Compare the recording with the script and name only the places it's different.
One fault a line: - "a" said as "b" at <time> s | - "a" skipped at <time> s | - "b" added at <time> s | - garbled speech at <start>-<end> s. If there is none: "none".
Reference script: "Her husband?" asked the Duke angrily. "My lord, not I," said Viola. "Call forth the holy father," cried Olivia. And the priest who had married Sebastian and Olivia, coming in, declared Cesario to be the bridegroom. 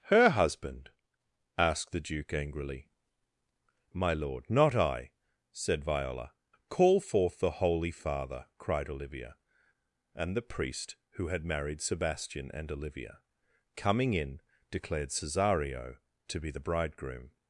none